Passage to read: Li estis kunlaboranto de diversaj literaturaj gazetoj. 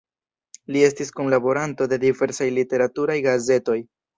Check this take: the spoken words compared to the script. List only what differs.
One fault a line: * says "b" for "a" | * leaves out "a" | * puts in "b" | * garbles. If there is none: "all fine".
all fine